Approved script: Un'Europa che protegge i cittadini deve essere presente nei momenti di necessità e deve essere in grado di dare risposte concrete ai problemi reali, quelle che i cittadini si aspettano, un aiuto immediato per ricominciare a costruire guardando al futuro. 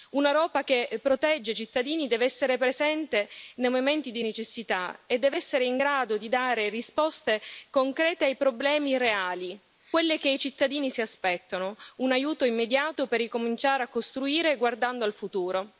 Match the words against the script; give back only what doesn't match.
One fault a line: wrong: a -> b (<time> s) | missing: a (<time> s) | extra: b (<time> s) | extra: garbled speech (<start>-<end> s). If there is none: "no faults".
no faults